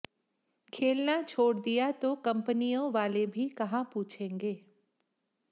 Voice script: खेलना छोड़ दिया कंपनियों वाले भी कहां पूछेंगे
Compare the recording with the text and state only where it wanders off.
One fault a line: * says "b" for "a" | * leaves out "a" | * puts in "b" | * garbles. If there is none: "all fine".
* puts in "तो"